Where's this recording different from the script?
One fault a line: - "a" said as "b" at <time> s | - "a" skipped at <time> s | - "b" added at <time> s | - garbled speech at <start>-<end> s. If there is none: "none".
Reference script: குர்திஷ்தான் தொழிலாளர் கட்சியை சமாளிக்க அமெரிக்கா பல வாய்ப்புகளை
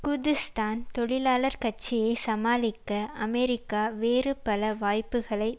- "வேறு" added at 4.0 s